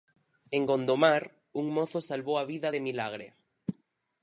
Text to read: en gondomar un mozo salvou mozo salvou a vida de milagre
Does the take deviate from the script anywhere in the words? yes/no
yes